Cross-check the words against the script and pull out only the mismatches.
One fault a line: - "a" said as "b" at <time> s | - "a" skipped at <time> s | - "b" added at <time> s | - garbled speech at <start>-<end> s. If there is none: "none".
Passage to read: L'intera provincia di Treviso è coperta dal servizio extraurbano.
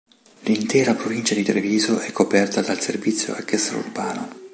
none